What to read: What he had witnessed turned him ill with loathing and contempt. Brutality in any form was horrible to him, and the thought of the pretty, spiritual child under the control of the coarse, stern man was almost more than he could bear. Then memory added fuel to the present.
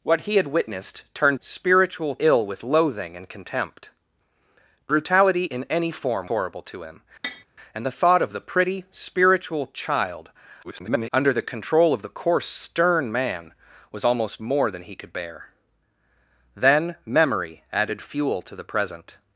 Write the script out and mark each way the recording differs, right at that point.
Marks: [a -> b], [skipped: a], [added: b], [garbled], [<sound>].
What he had witnessed turned [him -> spiritual] ill with loathing and contempt. Brutality in any form [skipped: was] horrible to him, [tap] and the thought of the pretty, spiritual child [garbled] under the control of the coarse, stern man was almost more than he could bear. Then memory added fuel to the present.